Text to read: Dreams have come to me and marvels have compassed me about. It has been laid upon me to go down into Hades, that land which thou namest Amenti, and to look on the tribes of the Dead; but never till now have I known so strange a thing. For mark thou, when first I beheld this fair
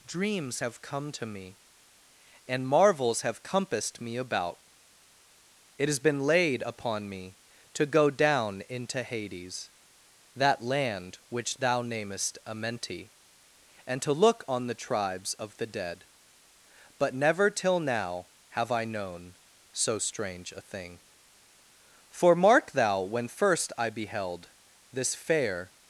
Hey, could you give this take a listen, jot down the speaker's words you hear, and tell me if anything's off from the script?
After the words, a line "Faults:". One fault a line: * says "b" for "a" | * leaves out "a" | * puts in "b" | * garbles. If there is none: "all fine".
Dreams have come to me and marvels have compassed me about. It has been laid upon me to go down into Hades, that land which thou namest Amenti, and to look on the tribes of the Dead; but never till now have I known so strange a thing. For mark thou, when first I beheld this fair
Faults:
all fine